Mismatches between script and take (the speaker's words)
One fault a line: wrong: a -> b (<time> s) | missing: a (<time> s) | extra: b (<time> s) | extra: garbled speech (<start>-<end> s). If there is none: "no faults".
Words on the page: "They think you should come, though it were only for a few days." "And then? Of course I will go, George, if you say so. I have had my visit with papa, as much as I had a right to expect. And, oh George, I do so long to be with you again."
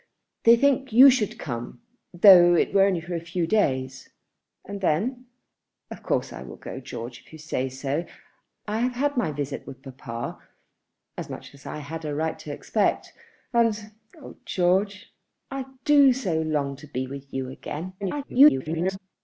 extra: garbled speech (18.0-19.0 s)